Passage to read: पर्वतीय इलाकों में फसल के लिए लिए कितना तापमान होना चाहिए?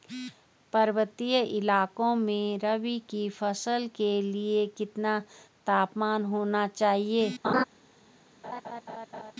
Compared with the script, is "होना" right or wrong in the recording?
right